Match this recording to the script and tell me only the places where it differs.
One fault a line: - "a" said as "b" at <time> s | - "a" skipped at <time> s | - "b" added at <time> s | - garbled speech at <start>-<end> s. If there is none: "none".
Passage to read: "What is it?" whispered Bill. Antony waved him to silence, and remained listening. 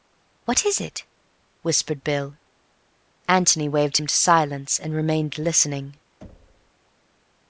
none